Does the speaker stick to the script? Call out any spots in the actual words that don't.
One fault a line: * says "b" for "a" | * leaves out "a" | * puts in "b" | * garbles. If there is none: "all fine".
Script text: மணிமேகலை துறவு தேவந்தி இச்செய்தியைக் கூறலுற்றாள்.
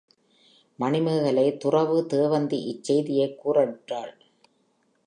all fine